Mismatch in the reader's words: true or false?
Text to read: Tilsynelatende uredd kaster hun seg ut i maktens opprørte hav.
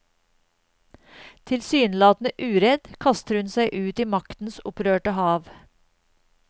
false